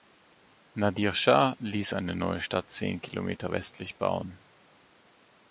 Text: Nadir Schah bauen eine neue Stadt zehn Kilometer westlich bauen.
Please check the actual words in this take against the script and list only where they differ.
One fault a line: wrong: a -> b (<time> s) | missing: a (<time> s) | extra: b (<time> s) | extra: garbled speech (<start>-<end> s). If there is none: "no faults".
wrong: bauen -> ließ (1.6 s)